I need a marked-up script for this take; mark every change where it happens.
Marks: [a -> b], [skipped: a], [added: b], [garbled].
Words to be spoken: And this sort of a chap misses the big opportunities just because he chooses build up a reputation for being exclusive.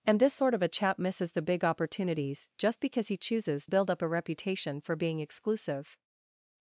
And this sort of a chap misses the big opportunities just because he chooses build up a reputation for being exclusive.